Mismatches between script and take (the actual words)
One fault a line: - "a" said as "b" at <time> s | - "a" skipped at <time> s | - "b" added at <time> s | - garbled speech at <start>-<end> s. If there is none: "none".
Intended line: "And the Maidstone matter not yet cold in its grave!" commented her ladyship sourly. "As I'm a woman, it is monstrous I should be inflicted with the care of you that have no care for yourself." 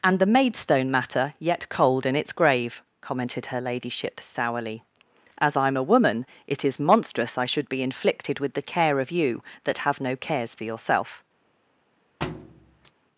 - "not" skipped at 1.3 s
- "care" said as "cares" at 10.2 s